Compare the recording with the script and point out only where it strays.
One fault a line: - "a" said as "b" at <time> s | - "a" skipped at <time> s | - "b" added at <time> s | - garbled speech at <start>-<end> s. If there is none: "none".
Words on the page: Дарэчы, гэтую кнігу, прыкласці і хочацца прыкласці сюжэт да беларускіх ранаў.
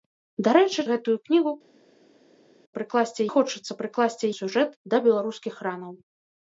none